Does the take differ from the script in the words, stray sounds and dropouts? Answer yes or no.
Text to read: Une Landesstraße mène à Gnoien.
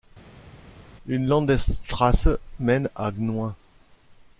no